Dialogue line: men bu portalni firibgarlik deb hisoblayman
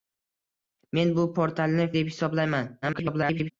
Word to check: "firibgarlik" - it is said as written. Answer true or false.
false